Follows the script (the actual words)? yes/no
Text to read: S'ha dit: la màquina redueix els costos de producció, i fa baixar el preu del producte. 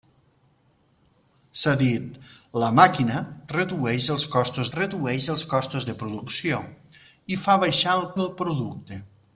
no